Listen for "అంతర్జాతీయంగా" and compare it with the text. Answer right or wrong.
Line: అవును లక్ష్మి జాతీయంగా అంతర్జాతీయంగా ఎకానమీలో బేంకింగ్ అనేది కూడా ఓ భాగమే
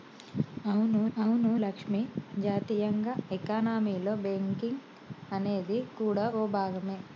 wrong